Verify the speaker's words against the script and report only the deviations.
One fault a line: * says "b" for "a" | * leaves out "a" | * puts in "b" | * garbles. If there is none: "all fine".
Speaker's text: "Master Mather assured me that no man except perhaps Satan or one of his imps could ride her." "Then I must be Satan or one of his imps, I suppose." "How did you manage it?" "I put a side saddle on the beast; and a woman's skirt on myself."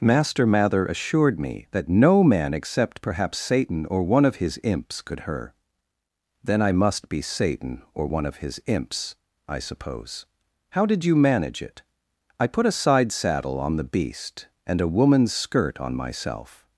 * leaves out "ride"